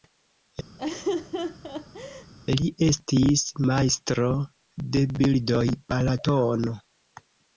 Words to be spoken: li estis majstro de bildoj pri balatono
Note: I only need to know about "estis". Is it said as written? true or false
true